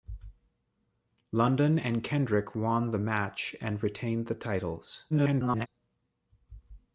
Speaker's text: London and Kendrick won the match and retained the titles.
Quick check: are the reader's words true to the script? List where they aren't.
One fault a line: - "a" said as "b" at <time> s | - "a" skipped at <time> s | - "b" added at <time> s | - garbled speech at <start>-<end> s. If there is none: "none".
- garbled speech at 5.1-5.7 s